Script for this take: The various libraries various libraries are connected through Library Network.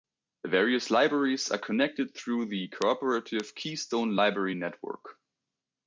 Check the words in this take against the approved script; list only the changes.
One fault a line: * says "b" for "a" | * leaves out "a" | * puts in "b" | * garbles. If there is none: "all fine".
* leaves out "various libraries"
* puts in "the cooperative Keystone"